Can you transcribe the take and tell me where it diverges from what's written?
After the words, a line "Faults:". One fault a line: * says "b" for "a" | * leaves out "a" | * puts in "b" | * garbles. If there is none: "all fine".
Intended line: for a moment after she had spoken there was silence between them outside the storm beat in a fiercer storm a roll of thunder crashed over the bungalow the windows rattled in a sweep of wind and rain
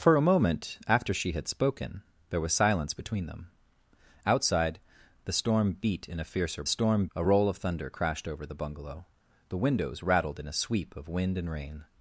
for a moment after she had spoken there was silence between them outside the storm beat in a fiercer storm a roll of thunder crashed over the bungalow the windows rattled in a sweep of wind and rain
Faults:
all fine